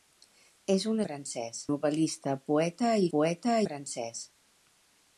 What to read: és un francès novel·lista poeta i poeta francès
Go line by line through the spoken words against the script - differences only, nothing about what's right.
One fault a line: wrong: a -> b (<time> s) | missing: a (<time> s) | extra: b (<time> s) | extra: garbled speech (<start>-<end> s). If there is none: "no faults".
no faults